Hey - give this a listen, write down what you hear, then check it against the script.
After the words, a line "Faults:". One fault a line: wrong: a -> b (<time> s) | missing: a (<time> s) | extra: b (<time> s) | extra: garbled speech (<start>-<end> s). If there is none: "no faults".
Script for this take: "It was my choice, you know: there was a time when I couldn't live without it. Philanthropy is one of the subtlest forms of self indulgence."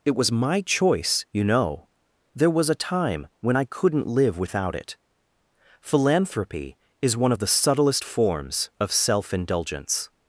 "It was my choice, you know: there was a time when I couldn't live without it. Philanthropy is one of the subtlest forms of self indulgence."
Faults:
no faults